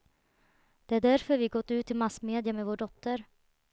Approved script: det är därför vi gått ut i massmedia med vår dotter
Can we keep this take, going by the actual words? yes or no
yes